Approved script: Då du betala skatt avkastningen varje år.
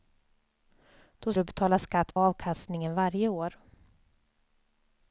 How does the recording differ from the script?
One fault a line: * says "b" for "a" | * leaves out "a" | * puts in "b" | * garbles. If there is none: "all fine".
all fine